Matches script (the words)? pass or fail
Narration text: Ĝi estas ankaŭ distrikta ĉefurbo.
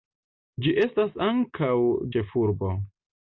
fail